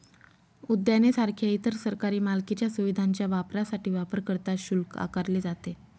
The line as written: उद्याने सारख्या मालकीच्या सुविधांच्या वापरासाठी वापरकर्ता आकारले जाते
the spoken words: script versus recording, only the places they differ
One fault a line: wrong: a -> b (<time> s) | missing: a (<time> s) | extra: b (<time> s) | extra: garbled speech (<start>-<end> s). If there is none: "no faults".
extra: इतर सरकारी (1.5 s)
extra: शुल्क (4.6 s)